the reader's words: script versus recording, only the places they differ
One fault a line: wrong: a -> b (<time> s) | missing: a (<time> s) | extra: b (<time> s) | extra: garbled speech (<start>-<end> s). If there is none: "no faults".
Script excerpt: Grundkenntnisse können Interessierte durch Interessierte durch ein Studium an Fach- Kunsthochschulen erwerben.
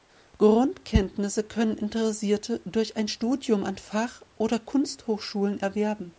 missing: Interessierte durch (3.0 s)
extra: oder (4.4 s)